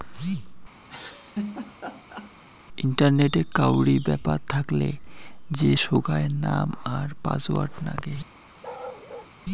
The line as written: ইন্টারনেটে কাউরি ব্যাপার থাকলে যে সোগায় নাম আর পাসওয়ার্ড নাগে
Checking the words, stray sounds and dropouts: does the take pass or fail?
fail